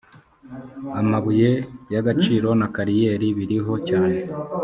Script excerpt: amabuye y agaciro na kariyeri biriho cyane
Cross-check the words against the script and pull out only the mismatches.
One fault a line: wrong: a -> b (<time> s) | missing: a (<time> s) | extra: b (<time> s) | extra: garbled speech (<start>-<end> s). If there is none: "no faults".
no faults